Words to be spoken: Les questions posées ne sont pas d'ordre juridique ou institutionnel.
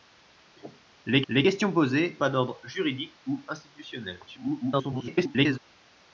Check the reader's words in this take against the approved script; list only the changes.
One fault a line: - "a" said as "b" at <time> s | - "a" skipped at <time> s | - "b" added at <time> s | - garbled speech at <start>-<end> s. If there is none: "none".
- "les" added at 1.3 s
- "ne sont" skipped at 2.2 s
- garbled speech at 4.3-5.6 s